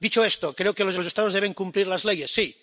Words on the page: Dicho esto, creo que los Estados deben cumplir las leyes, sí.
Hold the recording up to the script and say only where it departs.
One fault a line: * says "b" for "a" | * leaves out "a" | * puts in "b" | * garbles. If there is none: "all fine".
* puts in "los"